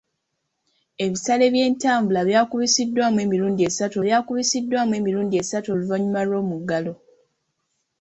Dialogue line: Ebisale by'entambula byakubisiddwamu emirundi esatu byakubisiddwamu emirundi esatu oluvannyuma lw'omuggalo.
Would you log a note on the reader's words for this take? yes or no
no